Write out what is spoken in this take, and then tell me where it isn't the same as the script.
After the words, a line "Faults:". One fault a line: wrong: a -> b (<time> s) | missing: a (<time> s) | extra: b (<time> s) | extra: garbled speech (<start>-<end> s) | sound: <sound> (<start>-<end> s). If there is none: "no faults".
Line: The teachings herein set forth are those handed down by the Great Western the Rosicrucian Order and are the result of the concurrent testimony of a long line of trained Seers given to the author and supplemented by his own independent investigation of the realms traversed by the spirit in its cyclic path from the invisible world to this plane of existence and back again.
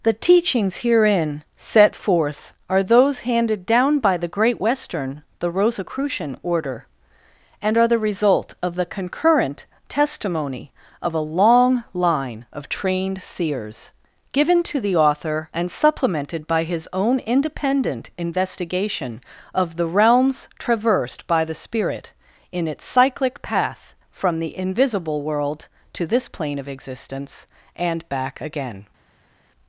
The teachings herein set forth are those handed down by the Great Western the Rosicrucian Order and are the result of the concurrent testimony of a long line of trained Seers given to the author and supplemented by his own independent investigation of the realms traversed by the spirit in its cyclic path from the invisible world to this plane of existence and back again.
Faults:
no faults